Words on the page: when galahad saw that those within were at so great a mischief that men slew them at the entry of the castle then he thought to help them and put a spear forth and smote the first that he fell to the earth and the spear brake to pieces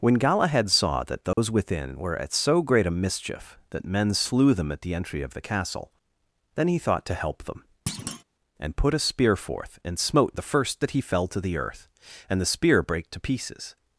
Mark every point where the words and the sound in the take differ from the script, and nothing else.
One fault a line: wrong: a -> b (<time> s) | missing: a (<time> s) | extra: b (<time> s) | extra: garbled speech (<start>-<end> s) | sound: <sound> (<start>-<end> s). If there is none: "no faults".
sound: dropout (1.3-1.4 s)
sound: thud (7.9-8.2 s)